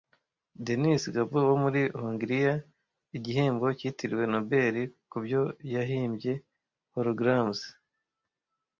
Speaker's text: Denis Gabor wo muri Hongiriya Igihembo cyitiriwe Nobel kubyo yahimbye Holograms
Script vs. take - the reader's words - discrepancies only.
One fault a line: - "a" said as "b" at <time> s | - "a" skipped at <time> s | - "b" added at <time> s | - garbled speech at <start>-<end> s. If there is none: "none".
none